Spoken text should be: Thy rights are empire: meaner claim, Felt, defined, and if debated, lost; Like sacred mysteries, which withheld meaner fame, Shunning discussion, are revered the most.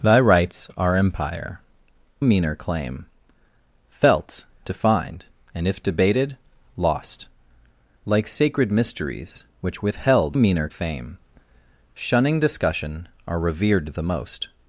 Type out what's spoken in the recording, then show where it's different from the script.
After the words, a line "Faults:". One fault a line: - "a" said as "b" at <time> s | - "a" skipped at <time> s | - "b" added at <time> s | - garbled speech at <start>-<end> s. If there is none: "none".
Thy rights are empire: meaner claim, Felt, defined, and if debated, lost; Like sacred mysteries, which withheld meaner fame, Shunning discussion, are revered the most.
Faults:
none